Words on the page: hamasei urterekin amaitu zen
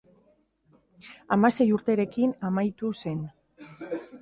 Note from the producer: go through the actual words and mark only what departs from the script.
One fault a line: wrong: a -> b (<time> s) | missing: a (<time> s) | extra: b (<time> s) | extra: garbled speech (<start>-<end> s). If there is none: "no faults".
no faults